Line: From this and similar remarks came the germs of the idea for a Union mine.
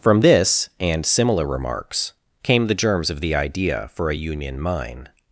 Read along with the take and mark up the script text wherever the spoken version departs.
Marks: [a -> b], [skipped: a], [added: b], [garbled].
From this and similar remarks came the germs of the idea for a Union mine.